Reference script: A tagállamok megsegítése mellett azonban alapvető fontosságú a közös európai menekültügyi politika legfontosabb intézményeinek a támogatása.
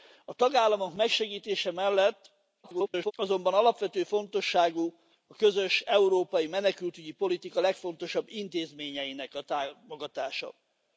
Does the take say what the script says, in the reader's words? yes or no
no